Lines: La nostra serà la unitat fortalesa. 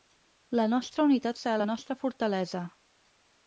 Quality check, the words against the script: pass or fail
fail